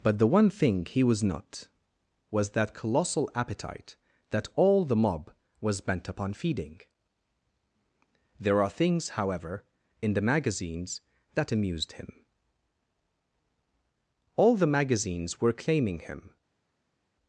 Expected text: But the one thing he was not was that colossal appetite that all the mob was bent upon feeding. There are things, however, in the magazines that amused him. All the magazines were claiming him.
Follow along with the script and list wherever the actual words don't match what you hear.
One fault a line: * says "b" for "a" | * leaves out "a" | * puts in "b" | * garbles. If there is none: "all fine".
all fine